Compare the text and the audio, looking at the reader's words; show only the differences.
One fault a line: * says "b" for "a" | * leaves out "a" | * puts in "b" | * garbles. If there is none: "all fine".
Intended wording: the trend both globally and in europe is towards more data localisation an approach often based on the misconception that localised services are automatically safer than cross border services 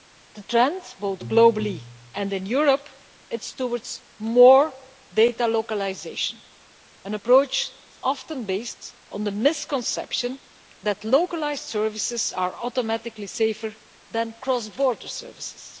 all fine